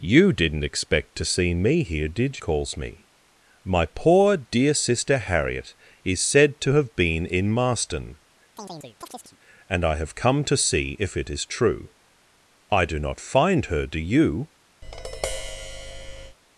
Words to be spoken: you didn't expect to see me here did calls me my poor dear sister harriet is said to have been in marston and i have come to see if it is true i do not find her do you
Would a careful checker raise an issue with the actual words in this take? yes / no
no